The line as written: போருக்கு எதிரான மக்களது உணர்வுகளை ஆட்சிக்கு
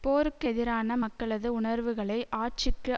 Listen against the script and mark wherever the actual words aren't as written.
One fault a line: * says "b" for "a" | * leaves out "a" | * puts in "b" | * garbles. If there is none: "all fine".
all fine